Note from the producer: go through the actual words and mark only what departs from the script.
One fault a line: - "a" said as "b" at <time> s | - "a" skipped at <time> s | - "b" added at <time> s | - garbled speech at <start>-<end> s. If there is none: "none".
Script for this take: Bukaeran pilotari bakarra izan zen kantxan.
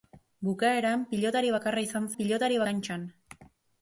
- "zen" said as "pilotari" at 2.2 s